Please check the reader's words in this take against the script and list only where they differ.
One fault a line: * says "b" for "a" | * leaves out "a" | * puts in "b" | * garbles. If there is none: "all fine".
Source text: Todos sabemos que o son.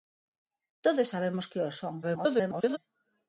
* garbles